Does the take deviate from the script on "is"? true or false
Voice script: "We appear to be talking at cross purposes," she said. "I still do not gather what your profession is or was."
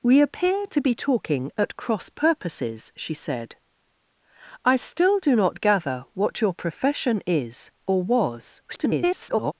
false